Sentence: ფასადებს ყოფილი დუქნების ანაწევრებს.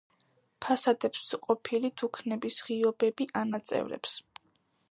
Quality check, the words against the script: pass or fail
fail